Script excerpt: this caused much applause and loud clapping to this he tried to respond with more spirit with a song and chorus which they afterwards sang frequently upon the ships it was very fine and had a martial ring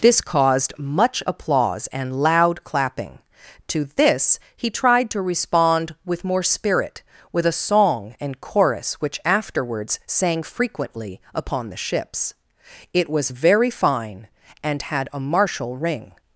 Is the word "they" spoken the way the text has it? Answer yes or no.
no